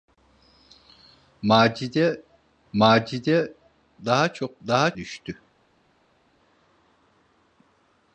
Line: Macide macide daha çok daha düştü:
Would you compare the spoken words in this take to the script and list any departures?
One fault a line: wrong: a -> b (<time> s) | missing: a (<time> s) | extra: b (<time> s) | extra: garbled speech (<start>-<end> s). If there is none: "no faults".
no faults